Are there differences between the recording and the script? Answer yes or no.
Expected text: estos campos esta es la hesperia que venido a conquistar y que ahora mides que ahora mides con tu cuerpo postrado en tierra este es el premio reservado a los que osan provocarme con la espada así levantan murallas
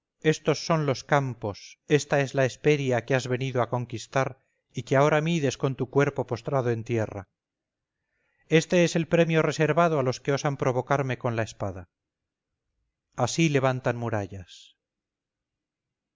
yes